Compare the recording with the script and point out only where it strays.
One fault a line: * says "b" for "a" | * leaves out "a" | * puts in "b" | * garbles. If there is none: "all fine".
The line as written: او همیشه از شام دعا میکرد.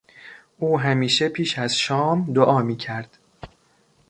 * puts in "پیش"